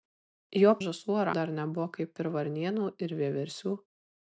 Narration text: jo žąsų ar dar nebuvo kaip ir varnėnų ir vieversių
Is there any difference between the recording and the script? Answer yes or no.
no